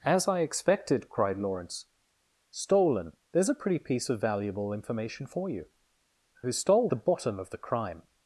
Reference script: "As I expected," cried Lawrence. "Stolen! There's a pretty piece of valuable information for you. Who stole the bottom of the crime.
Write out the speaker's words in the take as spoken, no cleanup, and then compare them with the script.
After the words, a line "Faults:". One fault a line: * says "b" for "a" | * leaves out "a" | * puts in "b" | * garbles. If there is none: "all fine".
"As I expected," cried Lawrence. "Stolen! There's a pretty piece of valuable information for you. Who stole the bottom of the crime.
Faults:
all fine